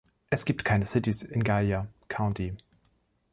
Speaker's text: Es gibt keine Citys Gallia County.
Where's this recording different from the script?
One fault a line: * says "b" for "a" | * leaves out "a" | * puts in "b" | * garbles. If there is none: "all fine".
* puts in "in"